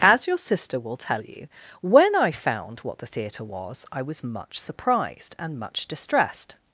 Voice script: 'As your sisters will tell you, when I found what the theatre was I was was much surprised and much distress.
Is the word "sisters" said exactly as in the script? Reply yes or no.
no